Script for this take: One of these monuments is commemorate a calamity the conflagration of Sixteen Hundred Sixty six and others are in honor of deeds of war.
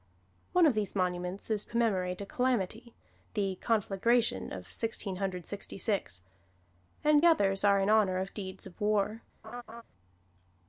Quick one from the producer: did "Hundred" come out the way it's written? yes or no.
yes